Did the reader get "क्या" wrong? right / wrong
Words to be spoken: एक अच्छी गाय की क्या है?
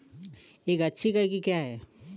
right